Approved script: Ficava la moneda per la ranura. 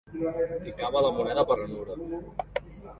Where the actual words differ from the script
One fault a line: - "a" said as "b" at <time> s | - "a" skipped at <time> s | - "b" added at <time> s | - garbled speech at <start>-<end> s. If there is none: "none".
- "la" skipped at 1.6 s